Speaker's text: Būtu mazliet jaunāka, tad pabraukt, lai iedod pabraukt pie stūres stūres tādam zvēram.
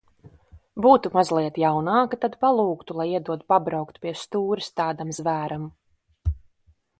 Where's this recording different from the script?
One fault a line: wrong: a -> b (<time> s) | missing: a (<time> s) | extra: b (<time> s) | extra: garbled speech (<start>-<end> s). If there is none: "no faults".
wrong: pabraukt -> palūgtu (2.5 s)
missing: stūres (4.7 s)